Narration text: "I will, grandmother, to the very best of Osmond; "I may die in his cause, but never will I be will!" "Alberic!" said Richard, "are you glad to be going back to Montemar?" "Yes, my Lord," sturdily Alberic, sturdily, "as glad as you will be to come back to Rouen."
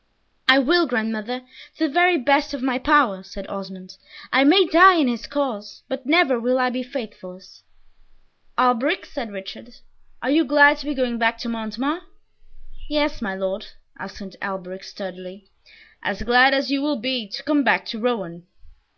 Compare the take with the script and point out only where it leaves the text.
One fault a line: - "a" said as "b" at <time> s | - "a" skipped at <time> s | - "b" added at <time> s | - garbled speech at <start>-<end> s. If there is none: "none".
- "my power said" added at 2.6 s
- "will" said as "faithless" at 6.8 s
- "sturdily" said as "answered" at 14.0 s